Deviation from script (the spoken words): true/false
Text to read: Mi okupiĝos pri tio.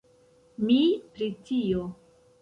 true